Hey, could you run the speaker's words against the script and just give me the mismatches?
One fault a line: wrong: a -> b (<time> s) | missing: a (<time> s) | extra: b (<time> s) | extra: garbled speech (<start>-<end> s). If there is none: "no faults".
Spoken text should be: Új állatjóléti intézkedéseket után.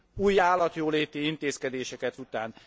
no faults